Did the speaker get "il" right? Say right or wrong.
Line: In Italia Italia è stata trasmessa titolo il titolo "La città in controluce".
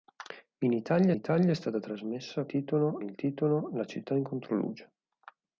right